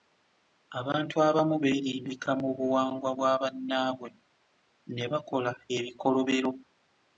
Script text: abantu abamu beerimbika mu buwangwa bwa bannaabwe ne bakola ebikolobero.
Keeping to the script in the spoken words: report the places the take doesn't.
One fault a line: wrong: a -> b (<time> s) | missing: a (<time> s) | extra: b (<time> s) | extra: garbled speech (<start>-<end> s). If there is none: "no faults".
no faults